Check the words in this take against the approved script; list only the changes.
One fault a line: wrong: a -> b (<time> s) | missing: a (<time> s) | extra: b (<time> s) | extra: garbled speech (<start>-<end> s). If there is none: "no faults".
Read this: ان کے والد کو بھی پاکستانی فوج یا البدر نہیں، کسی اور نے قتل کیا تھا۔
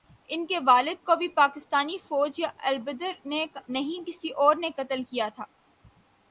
extra: نے (3.2 s)